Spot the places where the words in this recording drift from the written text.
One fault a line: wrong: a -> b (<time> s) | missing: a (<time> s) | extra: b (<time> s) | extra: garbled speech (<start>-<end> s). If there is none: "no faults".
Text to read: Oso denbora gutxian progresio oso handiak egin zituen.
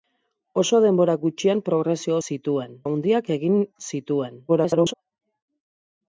wrong: oso -> zituen (2.3 s)
extra: garbled speech (4.5-4.9 s)